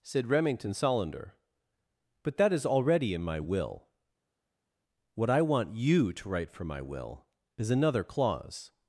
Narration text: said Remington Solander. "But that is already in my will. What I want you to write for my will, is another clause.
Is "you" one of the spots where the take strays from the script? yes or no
no